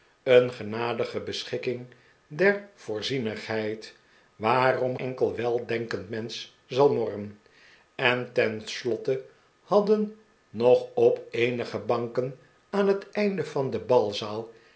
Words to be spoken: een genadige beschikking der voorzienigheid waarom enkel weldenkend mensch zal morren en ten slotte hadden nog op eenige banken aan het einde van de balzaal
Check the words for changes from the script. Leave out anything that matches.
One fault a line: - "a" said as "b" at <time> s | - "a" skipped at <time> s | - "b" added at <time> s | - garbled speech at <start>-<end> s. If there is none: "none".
none